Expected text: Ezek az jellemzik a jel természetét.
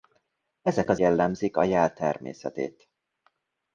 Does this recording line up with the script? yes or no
yes